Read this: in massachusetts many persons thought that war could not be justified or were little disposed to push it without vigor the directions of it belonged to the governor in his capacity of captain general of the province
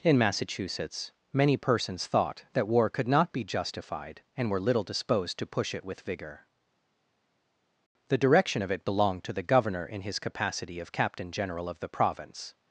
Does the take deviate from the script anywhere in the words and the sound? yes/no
yes